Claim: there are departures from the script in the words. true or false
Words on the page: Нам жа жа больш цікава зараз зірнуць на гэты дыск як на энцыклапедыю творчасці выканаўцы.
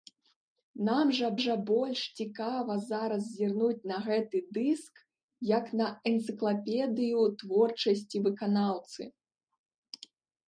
false